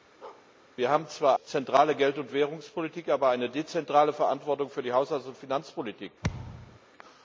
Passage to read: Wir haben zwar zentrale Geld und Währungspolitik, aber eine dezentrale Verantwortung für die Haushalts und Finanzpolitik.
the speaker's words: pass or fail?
pass